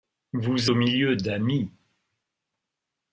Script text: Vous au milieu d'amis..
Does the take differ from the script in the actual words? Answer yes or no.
no